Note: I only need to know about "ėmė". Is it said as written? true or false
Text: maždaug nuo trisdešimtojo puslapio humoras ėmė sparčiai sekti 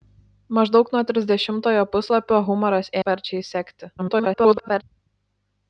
false